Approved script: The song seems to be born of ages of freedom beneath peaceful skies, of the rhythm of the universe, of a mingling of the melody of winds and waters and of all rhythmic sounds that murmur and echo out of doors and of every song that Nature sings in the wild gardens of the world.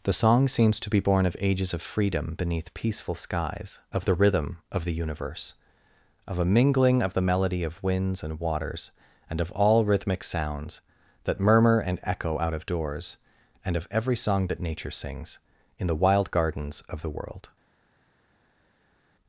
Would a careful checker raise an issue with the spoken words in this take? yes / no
no